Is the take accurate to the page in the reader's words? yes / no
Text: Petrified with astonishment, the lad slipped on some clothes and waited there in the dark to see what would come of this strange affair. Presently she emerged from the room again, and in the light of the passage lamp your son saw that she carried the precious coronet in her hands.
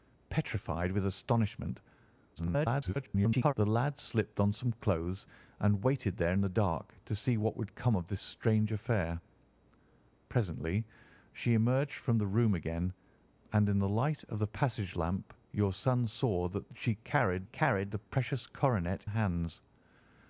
no